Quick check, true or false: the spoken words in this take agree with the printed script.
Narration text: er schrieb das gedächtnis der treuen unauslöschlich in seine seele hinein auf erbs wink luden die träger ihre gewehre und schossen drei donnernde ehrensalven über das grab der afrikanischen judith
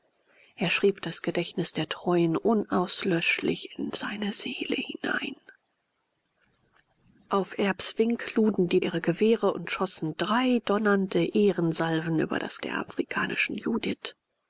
false